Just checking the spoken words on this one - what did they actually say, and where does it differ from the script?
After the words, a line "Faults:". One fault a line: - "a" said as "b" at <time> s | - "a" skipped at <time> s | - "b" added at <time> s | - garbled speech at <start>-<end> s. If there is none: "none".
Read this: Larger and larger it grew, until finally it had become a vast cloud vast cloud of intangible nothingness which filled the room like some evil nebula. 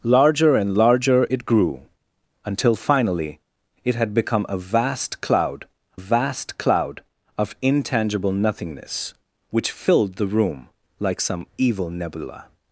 Larger and larger it grew, until finally it had become a vast cloud vast cloud of intangible nothingness which filled the room like some evil nebula.
Faults:
none